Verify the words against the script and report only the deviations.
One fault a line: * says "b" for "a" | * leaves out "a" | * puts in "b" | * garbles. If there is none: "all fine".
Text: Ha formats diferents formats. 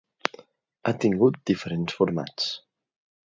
* says "tingut" for "formats"